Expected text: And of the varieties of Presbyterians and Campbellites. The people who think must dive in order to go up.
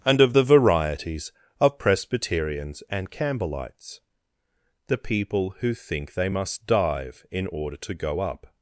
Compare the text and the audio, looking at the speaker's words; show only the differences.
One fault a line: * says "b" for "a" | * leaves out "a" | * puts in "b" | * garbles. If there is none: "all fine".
* puts in "they"